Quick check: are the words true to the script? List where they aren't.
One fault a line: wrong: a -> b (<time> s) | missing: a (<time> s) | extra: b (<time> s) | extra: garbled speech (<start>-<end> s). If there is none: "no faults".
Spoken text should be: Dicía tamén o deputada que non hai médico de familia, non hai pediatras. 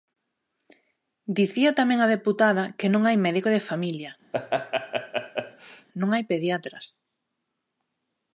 wrong: o -> a (2.0 s)